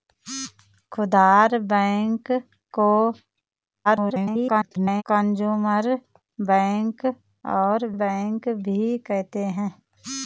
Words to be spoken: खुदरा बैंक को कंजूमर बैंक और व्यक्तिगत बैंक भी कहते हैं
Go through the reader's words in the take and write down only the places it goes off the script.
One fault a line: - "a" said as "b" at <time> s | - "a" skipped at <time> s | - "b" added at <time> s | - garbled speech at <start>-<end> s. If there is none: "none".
- garbled speech at 3.8-5.0 s
- "व्यक्तिगत" skipped at 7.9 s